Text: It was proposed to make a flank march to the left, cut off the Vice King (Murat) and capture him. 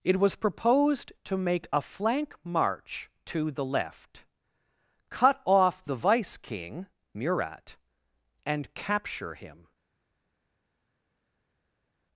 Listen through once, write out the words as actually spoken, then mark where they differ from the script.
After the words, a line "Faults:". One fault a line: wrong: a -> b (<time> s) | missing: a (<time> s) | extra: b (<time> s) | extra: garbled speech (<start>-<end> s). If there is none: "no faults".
It was proposed to make a flank march to the left, cut off the Vice King (Murat) and capture him.
Faults:
no faults